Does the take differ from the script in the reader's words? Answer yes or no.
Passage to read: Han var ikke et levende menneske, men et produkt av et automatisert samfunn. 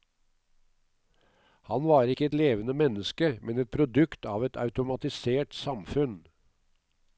no